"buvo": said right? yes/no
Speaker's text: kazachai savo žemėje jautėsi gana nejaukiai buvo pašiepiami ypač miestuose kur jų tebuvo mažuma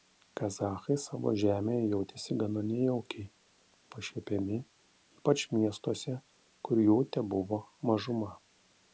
no